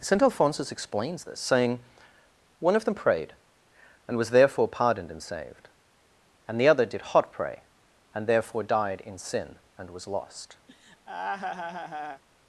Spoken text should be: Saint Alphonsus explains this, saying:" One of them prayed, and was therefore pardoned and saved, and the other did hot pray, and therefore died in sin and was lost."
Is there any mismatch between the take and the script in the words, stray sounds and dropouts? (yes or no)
yes